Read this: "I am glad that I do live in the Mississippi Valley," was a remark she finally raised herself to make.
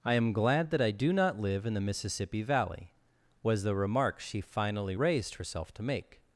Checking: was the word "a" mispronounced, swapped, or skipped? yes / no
yes